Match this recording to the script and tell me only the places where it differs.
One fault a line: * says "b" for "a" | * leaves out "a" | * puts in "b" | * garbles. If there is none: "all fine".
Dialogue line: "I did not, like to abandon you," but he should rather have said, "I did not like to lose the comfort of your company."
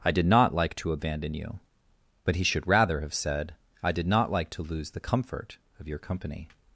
all fine